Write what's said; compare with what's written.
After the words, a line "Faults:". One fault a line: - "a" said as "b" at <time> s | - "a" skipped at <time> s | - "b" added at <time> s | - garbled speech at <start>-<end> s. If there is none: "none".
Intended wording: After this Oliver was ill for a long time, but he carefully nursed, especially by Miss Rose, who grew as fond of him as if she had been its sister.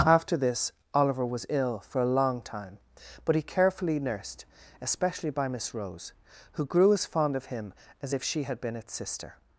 After this Oliver was ill for a long time, but he carefully nursed, especially by Miss Rose, who grew as fond of him as if she had been its sister.
Faults:
none